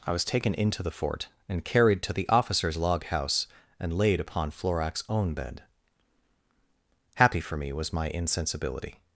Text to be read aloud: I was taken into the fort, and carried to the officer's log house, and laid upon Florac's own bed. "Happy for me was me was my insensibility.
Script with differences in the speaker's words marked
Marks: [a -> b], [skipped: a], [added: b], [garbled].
I was taken into the fort, and carried to the officer's log house, and laid upon Florac's own bed. "Happy for me was [skipped: me was] my insensibility.